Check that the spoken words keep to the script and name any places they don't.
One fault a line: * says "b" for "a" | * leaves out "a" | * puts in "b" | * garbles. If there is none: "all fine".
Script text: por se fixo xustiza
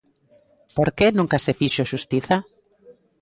* puts in "que nunca"